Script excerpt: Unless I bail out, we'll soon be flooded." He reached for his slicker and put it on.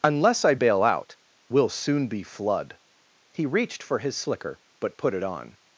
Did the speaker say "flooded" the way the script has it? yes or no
no